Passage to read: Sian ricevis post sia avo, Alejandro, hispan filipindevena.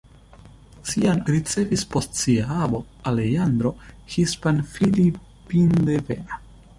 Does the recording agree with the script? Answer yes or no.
yes